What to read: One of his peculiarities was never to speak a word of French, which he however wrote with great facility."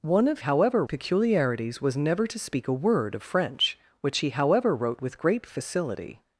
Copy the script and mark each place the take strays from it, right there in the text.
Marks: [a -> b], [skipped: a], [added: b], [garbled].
One of [his -> however] peculiarities was never to speak a word of French, which he however wrote with great facility."